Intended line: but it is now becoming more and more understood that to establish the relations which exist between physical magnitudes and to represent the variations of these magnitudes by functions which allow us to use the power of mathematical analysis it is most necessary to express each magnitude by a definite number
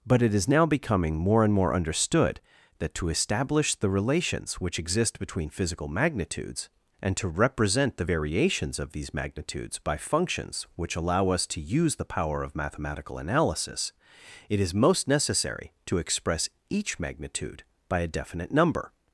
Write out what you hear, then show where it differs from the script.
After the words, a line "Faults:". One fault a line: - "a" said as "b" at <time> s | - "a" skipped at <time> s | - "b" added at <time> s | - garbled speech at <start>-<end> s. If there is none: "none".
but it is now becoming more and more understood that to establish the relations which exist between physical magnitudes and to represent the variations of these magnitudes by functions which allow us to use the power of mathematical analysis it is most necessary to express each magnitude by a definite number
Faults:
none